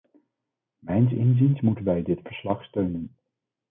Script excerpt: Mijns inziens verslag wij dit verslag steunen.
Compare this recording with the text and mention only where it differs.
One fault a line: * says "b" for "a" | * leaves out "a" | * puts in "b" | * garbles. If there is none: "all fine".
* says "moeten" for "verslag"